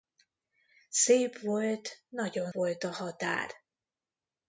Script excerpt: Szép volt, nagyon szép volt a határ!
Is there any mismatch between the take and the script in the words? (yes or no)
yes